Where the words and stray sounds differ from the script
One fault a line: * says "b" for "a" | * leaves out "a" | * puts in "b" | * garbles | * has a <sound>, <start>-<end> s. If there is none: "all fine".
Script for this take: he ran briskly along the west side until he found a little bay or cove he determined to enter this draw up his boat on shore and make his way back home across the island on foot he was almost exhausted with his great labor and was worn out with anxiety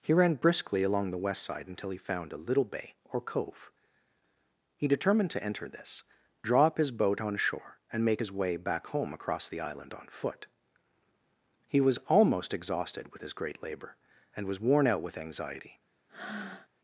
* has a breath, 16.1-16.7 s